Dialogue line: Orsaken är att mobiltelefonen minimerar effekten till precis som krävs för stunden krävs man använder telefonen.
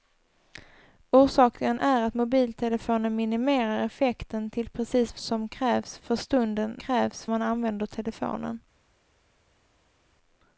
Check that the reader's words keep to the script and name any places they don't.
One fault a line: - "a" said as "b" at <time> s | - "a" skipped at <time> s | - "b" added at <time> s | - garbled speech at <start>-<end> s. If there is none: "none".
none